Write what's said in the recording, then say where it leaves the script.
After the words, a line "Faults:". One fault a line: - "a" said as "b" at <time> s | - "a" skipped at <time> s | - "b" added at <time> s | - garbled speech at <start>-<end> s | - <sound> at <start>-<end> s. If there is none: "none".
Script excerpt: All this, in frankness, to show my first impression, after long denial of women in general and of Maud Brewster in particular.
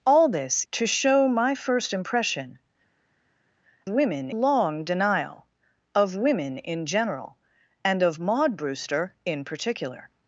All this, to show my first impression, women long denial of women in general and of Maud Brewster in particular.
Faults:
- "in frankness" skipped at 0.7 s
- "after" said as "women" at 3.9 s